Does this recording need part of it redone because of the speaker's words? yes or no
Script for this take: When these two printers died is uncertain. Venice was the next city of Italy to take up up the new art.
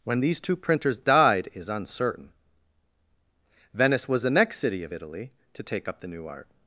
yes